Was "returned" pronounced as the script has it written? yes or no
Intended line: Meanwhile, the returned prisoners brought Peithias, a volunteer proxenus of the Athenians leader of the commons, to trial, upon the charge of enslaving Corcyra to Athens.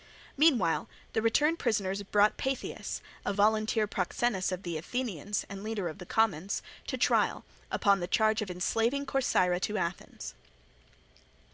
yes